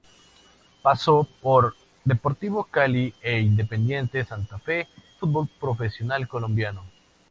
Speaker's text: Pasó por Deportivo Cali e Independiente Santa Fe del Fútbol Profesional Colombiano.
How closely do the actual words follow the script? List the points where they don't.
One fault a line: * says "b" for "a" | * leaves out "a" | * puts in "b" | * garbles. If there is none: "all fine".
* leaves out "del"